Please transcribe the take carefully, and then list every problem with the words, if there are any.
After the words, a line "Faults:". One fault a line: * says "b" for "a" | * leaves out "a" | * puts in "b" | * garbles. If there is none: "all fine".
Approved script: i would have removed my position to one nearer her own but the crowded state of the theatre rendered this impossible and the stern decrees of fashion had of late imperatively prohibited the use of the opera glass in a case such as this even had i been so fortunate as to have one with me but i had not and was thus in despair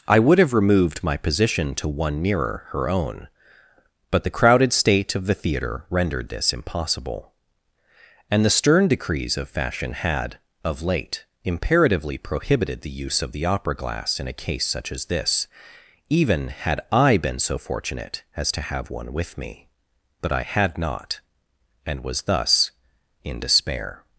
i would have removed my position to one nearer her own but the crowded state of the theatre rendered this impossible and the stern decrees of fashion had of late imperatively prohibited the use of the opera glass in a case such as this even had i been so fortunate as to have one with me but i had not and was thus in despair
Faults:
all fine